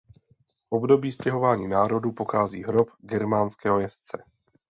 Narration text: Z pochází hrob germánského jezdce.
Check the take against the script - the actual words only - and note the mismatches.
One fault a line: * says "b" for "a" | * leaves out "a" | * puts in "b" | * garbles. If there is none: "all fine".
* puts in "období stěhování národů"